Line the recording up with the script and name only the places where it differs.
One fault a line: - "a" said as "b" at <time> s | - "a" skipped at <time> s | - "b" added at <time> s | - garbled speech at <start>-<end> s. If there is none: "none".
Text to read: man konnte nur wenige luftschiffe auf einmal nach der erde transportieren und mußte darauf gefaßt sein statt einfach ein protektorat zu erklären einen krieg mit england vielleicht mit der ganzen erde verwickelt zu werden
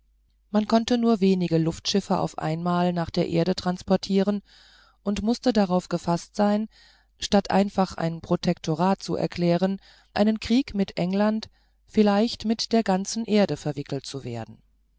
none